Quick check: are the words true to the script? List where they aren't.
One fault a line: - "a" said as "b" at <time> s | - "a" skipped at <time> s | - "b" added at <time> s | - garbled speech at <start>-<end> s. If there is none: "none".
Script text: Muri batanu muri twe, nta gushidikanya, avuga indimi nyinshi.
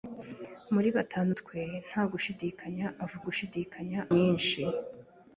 - "muri" skipped at 1.3 s
- "indimi" said as "gushidikanya" at 3.3 s